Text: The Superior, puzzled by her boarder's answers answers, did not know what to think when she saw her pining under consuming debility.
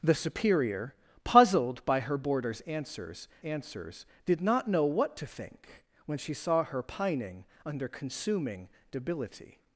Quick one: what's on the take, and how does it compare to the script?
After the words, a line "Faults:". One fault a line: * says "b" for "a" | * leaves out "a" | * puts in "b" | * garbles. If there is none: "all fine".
The Superior, puzzled by her boarder's answers answers, did not know what to think when she saw her pining under consuming debility.
Faults:
all fine